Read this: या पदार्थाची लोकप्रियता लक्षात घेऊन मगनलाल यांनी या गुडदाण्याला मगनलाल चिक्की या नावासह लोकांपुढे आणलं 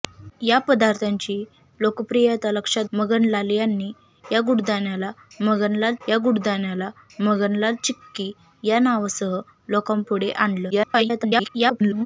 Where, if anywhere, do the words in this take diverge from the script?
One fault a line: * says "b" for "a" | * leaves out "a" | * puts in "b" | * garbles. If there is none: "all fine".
* leaves out "घेऊन"
* puts in "या गुडदाण्याला मगनलाल"
* garbles